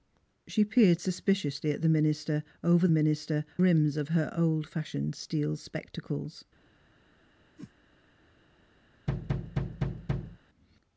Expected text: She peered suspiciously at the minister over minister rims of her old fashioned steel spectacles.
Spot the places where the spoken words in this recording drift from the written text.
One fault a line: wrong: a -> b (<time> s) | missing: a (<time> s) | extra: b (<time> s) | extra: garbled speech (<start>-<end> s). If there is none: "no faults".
no faults